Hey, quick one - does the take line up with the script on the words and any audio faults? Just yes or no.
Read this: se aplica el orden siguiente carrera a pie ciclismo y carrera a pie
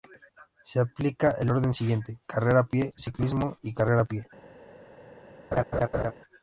no